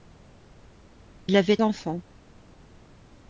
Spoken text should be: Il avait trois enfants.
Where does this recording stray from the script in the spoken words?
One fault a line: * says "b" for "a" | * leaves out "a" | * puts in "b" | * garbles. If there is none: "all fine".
* leaves out "trois"